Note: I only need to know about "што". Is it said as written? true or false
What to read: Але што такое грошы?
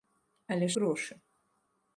false